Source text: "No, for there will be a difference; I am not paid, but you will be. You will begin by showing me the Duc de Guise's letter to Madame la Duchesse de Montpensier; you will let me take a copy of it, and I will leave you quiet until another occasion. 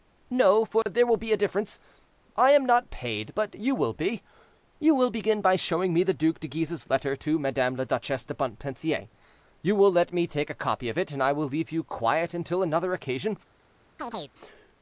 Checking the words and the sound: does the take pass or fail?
fail